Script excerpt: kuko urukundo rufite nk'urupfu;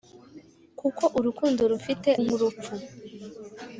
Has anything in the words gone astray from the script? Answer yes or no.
no